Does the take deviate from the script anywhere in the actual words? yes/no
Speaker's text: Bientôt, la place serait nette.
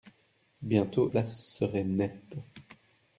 yes